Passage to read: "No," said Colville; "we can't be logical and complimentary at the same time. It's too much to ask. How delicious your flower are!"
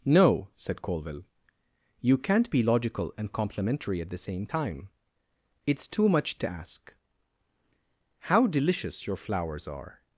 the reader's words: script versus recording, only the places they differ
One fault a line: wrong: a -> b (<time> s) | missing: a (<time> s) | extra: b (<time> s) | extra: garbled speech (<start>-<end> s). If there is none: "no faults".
wrong: we -> you (2.0 s)
wrong: flower -> flowers (9.2 s)